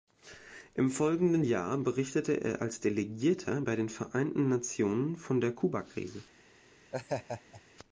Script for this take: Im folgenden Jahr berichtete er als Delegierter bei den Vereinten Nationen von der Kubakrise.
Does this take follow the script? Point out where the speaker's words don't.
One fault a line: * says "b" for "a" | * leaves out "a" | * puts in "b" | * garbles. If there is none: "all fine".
all fine